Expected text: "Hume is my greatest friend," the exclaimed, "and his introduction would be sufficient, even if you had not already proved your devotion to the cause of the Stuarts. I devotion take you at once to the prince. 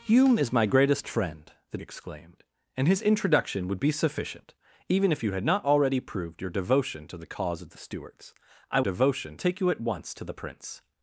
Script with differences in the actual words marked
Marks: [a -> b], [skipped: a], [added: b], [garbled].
"Hume is my greatest friend," the exclaimed, "and his introduction would be sufficient, even if you had not already proved your devotion to the cause of the Stuarts. I devotion take you at once to the prince.